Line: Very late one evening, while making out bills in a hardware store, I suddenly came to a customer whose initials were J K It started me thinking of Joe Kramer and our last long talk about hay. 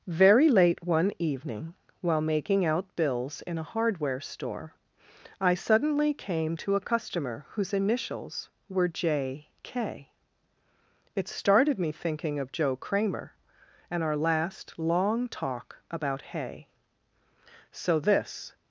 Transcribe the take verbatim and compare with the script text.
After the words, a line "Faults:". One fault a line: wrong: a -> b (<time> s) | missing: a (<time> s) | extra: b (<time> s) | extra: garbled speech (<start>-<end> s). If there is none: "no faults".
Very late one evening, while making out bills in a hardware store, I suddenly came to a customer whose initials were J K It started me thinking of Joe Kramer and our last long talk about hay. "So this
Faults:
extra: So this (17.7 s)